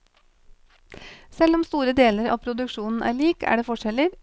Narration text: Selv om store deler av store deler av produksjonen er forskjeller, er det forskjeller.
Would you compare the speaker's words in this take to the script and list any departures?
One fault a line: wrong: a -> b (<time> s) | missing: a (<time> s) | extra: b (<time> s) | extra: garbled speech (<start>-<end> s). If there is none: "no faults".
missing: store deler av (2.4 s)
wrong: forskjeller -> lik (3.2 s)